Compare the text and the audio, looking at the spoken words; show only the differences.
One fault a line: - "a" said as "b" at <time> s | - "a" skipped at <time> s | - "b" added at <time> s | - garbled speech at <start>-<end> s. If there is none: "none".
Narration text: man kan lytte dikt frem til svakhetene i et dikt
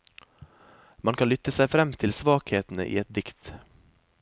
- "dikt" said as "seg" at 1.6 s